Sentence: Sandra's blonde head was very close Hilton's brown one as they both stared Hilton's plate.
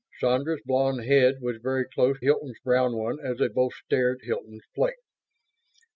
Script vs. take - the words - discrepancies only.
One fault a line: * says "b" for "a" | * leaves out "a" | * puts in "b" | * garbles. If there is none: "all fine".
all fine